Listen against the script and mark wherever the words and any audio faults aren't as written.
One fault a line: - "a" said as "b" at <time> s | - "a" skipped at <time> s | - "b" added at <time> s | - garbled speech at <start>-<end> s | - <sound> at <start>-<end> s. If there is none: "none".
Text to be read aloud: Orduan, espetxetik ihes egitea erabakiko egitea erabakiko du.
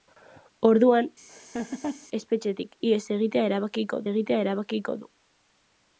- laugh at 1.3-2.1 s